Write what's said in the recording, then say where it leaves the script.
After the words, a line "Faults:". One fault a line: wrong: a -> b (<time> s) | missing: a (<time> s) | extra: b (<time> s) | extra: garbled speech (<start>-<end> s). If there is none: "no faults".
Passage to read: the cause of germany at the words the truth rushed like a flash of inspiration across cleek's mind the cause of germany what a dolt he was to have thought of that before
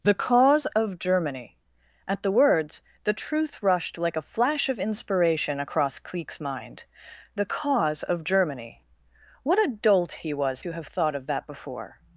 the cause of germany at the words the truth rushed like a flash of inspiration across cleek's mind the cause of germany what a dolt he was to have thought of that before
Faults:
no faults